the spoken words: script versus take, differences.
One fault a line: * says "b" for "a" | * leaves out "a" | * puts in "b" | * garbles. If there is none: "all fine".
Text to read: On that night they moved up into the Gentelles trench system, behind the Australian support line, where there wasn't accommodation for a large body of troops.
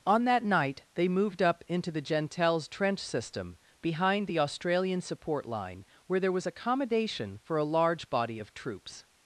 * says "was" for "wasn't"